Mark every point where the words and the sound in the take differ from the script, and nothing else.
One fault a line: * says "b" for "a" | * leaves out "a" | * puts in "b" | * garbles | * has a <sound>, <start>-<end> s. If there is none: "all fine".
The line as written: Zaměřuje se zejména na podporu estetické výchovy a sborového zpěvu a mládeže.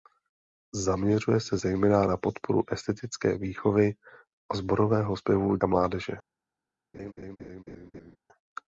* has a laugh, 6.9-8.2 s